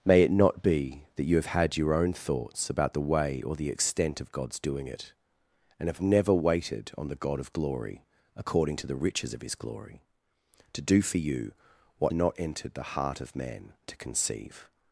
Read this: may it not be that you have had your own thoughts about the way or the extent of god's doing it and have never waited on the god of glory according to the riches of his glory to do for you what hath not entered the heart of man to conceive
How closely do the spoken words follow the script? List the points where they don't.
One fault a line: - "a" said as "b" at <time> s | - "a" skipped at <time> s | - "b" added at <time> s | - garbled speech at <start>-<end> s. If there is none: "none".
- "hath" skipped at 12.1 s